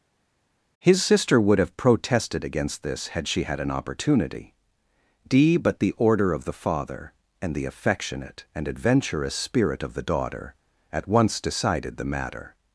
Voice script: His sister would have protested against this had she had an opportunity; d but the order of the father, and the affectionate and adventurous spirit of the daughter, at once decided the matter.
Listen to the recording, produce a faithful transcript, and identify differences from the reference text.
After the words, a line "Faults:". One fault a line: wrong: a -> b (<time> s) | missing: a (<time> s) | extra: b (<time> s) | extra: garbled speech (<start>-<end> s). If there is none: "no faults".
His sister would have protested against this had she had an opportunity; d but the order of the father, and the affectionate and adventurous spirit of the daughter, at once decided the matter.
Faults:
no faults